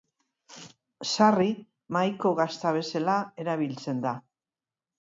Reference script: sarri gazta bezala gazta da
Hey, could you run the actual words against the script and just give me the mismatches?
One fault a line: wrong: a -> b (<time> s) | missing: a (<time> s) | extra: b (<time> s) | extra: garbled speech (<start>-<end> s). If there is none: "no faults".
extra: mahaiko (2.0 s)
wrong: gazta -> erabiltzen (3.5 s)